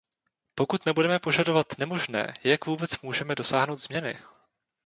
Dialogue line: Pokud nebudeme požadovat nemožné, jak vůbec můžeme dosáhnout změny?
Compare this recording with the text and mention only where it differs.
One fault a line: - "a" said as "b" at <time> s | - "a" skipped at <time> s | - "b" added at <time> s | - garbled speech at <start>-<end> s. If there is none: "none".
none